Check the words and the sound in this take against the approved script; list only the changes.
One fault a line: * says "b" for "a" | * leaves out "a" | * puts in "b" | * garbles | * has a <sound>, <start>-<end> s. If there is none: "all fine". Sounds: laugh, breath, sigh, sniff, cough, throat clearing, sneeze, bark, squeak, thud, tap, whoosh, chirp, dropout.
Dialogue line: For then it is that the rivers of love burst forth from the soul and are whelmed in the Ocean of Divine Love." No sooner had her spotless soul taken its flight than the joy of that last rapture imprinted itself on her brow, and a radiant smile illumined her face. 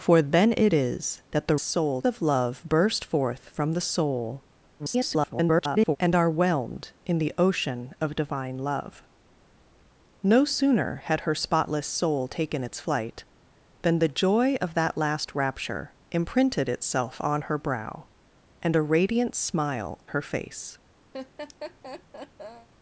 * says "soul" for "rivers"
* garbles
* leaves out "illumined"
* has a laugh, 21.1-22.7 s